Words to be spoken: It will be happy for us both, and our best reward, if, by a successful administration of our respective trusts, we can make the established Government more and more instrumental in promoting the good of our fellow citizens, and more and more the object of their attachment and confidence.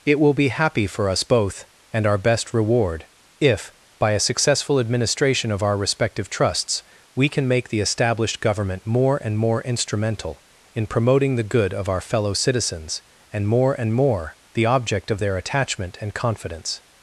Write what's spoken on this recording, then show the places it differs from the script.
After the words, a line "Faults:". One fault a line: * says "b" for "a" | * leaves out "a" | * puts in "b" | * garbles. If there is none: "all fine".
It will be happy for us both, and our best reward, if, by a successful administration of our respective trusts, we can make the established Government more and more instrumental in promoting the good of our fellow citizens, and more and more the object of their attachment and confidence.
Faults:
all fine